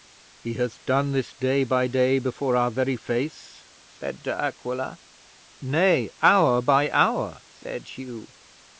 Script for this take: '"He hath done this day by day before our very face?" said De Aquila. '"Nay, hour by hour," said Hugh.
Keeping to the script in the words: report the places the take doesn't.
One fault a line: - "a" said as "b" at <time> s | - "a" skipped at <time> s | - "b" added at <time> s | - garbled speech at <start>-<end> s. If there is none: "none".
none